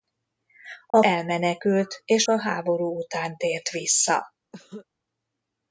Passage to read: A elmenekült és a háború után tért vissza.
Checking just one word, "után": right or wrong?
right